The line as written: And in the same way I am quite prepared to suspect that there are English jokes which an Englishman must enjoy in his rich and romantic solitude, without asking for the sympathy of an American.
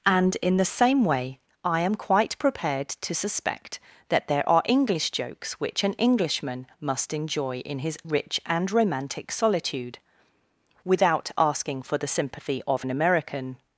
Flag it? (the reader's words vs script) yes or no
no